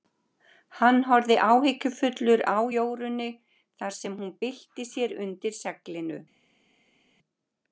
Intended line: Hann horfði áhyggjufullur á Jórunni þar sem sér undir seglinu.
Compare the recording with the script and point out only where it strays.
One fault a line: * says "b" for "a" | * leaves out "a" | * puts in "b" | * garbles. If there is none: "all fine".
* puts in "hún bylti"